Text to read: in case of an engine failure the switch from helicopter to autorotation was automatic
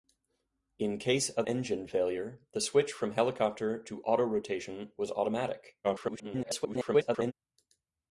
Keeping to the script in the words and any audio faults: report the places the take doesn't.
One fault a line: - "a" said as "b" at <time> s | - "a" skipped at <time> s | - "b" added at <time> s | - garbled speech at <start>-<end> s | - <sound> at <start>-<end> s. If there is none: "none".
- "an" skipped at 1.5 s
- garbled speech at 5.8-7.3 s